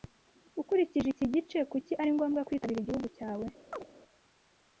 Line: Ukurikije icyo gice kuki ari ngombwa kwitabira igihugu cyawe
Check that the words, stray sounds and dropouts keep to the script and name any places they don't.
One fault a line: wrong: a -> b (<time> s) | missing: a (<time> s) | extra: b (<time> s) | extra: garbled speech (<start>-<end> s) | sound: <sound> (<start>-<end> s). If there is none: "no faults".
wrong: icyo -> iki (1.1 s)
sound: chirp (3.7-3.9 s)